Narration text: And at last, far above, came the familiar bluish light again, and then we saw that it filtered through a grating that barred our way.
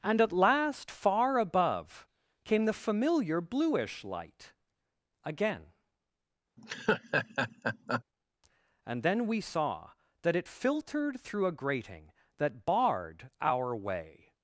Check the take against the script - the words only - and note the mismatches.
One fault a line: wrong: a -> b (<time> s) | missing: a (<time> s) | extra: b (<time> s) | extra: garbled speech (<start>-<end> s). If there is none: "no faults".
no faults